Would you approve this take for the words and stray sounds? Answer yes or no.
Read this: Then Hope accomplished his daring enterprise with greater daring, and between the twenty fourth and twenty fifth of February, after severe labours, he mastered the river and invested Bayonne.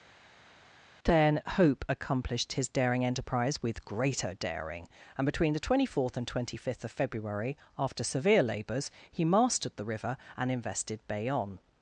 yes